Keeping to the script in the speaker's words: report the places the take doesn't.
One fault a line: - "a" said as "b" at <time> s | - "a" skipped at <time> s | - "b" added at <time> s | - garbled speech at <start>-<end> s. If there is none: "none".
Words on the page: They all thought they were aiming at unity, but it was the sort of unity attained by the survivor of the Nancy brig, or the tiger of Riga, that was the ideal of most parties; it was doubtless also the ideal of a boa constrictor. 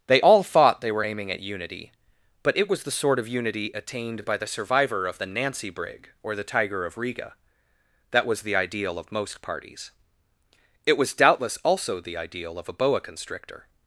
none